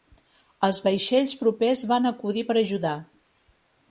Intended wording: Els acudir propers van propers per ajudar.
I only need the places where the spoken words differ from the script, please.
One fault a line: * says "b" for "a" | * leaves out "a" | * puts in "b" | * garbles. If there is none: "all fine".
* says "vaixells" for "acudir"
* says "acudir" for "propers"